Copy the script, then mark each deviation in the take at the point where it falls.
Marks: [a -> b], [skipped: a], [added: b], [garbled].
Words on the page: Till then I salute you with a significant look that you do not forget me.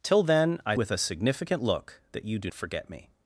Till then I [skipped: salute you] with a significant look that you do [skipped: not] forget me.